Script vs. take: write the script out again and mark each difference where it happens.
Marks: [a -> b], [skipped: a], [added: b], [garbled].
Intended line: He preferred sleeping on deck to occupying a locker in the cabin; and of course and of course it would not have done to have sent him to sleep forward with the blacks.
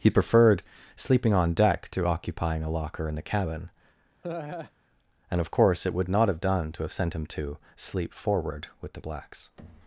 He preferred sleeping on deck to occupying a locker in the cabin; and of course [skipped: and of course] it would not have done to have sent him to sleep forward with the blacks.